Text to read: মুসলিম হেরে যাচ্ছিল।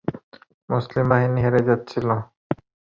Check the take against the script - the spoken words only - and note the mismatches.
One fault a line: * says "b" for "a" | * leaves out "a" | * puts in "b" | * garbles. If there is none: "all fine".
* puts in "বাহিনী"